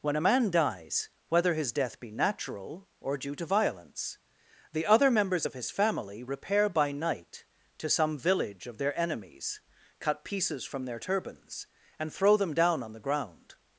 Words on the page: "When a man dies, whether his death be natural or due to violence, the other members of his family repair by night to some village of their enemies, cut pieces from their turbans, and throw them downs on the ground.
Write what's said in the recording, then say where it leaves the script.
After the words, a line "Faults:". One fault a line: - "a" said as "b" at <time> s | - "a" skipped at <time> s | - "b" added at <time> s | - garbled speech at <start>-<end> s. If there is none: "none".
"When a man dies, whether his death be natural or due to violence, the other members of his family repair by night to some village of their enemies, cut pieces from their turbans, and throw them down on the ground.
Faults:
- "downs" said as "down" at 12.5 s